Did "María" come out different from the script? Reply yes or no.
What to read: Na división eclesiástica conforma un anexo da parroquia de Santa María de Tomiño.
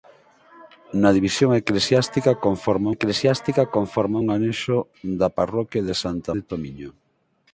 yes